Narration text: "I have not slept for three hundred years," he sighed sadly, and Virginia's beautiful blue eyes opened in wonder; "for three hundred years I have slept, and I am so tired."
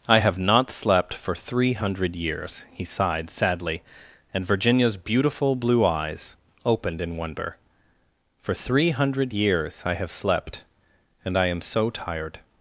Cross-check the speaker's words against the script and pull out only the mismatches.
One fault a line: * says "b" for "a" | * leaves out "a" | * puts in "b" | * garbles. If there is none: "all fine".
all fine